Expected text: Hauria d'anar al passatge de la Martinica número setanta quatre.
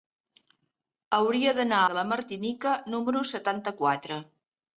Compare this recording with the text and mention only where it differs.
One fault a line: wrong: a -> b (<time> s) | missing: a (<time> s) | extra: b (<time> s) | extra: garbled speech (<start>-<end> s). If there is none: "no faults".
missing: al passatge (1.8 s)